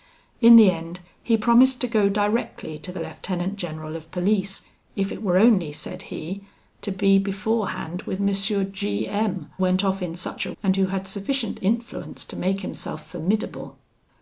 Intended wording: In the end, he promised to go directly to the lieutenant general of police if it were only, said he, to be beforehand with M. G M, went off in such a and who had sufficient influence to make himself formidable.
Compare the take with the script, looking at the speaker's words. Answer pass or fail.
pass